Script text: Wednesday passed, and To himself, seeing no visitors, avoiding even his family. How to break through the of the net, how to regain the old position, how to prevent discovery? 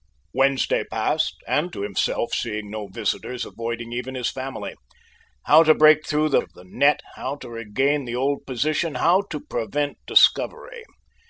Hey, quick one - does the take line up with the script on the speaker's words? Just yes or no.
yes